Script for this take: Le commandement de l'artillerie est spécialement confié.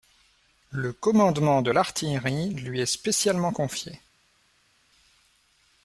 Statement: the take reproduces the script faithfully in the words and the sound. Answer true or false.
false